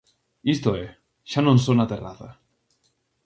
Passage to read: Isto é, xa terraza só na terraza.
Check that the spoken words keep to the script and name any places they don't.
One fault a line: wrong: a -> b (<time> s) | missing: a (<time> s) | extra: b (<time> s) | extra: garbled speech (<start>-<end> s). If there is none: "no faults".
wrong: terraza -> non (1.4 s)